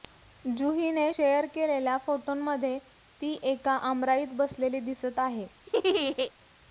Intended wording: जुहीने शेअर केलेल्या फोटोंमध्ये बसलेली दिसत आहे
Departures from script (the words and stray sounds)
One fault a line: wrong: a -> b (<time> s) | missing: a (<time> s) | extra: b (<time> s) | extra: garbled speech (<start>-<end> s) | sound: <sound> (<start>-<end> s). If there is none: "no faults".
extra: ती एका आमराईत (3.2 s)
sound: laugh (5.7-6.3 s)